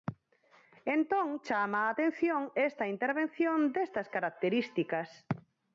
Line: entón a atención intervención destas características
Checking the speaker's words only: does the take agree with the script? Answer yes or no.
no